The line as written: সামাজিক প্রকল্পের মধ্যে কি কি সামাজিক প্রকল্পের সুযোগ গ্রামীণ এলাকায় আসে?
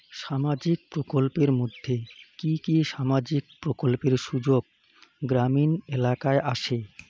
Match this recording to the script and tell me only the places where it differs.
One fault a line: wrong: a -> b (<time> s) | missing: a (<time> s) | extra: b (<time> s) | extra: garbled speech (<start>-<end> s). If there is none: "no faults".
no faults